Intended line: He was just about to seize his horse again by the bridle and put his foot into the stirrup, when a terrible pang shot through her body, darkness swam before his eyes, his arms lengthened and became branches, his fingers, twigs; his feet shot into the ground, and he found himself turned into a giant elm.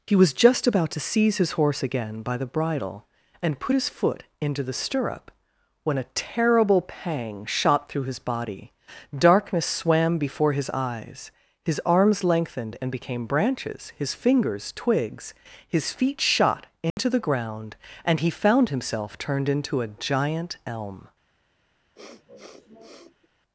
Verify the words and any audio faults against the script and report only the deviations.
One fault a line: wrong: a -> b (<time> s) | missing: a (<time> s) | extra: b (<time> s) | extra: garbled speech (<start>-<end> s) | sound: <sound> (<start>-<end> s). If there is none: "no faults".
wrong: her -> his (8.0 s)
sound: dropout (16.9-17.0 s)
sound: sniff (21.9-23.3 s)